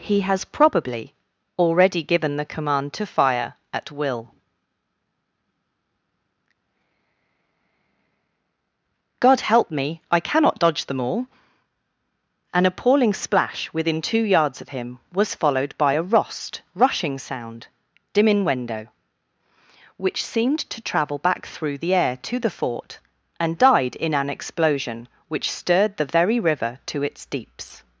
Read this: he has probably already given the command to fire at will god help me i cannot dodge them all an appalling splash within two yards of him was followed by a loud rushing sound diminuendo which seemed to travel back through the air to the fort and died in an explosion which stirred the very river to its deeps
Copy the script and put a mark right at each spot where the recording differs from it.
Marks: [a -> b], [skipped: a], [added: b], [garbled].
he has probably already given the command to fire at will god help me i cannot dodge them all an appalling splash within two yards of him was followed by a [loud -> rost] rushing sound diminuendo which seemed to travel back through the air to the fort and died in an explosion which stirred the very river to its deeps